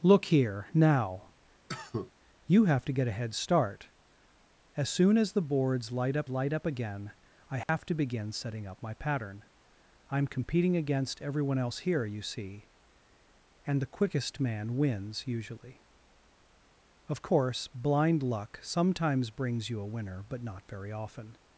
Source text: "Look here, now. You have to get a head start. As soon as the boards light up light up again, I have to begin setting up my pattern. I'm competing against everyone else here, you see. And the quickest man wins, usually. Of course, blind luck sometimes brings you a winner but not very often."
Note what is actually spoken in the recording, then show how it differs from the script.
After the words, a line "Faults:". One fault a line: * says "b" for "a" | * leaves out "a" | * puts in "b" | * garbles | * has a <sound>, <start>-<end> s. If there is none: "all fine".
"Look here, now. You have to get a head start. As soon as the boards light up light up again, I have to begin setting up my pattern. I'm competing against everyone else here, you see. And the quickest man wins, usually. Of course, blind luck sometimes brings you a winner but not very often."
Faults:
* has a cough, 1.7-2.1 s
* has a dropout, 7.6-7.7 s